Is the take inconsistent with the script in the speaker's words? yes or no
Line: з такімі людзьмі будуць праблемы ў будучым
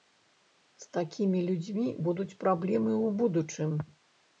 no